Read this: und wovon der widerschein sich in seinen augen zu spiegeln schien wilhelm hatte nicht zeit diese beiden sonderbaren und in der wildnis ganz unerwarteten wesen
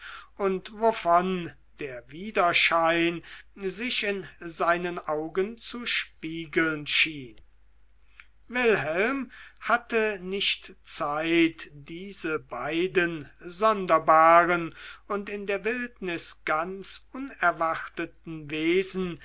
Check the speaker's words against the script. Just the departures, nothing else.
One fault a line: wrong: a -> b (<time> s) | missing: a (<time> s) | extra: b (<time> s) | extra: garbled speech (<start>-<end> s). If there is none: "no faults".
no faults